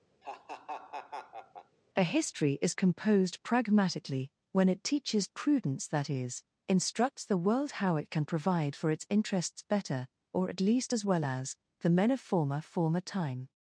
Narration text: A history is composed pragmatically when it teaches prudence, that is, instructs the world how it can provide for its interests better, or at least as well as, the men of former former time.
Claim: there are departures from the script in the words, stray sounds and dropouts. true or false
true